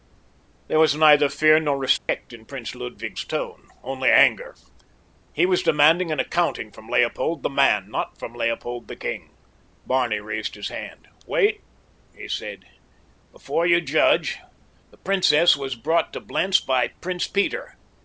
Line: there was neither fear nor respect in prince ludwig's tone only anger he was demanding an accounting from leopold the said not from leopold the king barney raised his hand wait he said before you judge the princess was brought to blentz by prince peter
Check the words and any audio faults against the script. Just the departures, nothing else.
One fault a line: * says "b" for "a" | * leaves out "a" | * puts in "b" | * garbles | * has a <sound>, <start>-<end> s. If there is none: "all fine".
* has a dropout, 2.0-2.1 s
* says "man" for "said"